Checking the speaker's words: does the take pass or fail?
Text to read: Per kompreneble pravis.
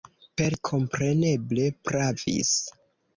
pass